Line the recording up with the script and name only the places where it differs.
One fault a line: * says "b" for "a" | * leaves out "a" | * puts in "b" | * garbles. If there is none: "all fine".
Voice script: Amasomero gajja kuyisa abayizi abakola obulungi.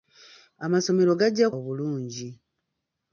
* leaves out "kuyisa abayizi abakola"